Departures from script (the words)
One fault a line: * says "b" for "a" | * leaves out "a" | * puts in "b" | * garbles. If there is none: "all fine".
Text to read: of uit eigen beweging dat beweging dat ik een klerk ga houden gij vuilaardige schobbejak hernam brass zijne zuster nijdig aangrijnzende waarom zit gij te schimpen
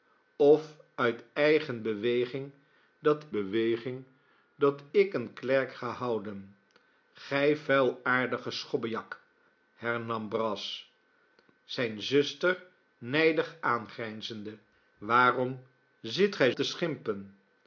all fine